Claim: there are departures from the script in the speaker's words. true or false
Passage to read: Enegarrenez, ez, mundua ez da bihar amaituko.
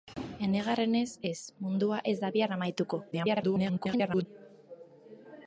true